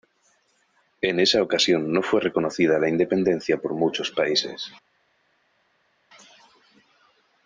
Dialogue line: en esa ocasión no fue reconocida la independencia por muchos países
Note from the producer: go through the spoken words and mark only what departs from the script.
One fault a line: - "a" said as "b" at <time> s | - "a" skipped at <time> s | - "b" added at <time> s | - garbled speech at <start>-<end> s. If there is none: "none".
none